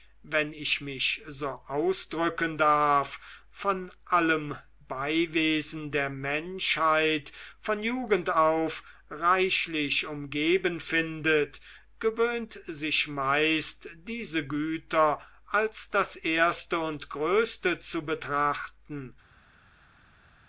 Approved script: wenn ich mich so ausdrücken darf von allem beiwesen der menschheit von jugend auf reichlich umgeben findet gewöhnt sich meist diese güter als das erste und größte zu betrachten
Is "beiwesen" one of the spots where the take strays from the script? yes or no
no